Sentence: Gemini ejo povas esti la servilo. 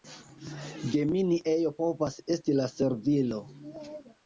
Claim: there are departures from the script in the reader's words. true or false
false